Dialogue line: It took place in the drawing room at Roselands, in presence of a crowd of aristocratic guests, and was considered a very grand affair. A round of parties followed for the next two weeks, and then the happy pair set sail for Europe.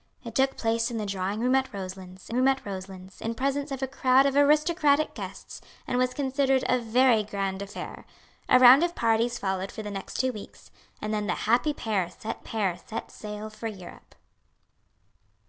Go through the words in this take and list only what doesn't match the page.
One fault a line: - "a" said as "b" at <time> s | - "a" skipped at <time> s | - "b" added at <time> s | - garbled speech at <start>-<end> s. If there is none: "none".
- "room at Roselands" added at 2.3 s
- "pair set" added at 12.4 s